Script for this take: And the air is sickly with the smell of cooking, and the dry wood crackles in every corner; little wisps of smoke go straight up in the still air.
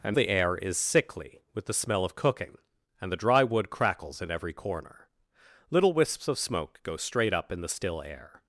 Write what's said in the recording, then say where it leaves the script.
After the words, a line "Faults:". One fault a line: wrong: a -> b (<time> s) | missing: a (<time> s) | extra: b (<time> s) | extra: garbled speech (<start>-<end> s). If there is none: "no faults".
And the air is sickly with the smell of cooking, and the dry wood crackles in every corner; little wisps of smoke go straight up in the still air.
Faults:
no faults